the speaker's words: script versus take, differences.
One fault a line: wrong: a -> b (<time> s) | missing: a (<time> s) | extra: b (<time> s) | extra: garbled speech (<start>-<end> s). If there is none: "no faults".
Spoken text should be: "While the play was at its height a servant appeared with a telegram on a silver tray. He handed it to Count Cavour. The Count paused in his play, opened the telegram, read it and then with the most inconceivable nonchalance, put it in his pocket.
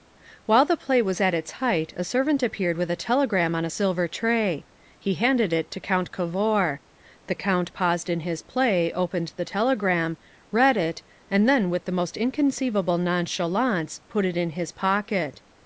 no faults